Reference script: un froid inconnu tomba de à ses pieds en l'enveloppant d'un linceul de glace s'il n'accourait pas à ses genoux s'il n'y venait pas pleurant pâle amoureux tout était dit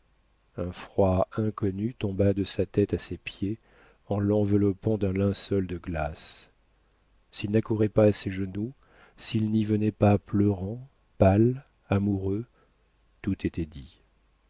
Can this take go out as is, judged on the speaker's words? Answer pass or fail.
fail